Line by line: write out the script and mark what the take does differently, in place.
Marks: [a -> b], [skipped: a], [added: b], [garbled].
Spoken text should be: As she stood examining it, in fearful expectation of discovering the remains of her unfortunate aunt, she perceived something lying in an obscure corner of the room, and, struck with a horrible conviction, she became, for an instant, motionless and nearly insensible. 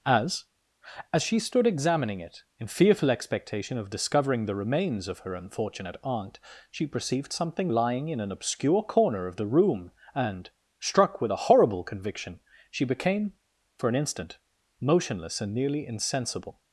As [added: as] she stood examining it, in fearful expectation of discovering the remains of her unfortunate aunt, she perceived something lying in an obscure corner of the room, and, struck with a horrible conviction, she became, for an instant, motionless and nearly insensible.